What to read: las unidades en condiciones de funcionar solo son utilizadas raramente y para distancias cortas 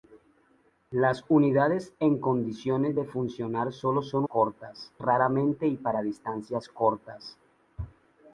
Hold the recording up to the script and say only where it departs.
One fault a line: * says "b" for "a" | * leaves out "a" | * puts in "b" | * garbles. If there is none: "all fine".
* says "cortas" for "utilizadas"